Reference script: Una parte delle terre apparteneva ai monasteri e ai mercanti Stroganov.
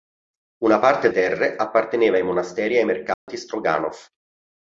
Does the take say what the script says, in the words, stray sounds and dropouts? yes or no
no